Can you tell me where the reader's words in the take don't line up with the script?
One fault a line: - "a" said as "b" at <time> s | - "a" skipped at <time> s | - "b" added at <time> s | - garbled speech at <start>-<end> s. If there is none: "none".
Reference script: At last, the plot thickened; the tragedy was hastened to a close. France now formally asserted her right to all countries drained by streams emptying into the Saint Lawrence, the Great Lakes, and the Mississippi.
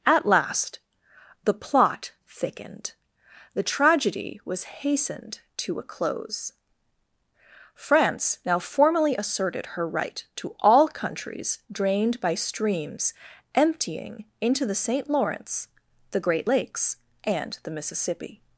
none